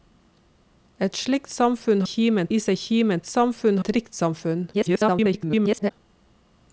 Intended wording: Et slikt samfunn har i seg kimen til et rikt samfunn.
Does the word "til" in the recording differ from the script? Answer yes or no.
yes